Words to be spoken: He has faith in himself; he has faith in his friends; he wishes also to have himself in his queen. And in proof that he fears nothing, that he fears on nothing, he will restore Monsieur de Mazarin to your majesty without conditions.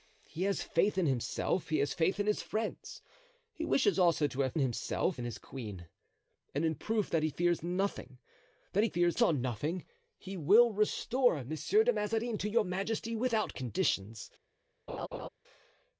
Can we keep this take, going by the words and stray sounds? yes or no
no